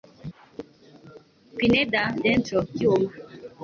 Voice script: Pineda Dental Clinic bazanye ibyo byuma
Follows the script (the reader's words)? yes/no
no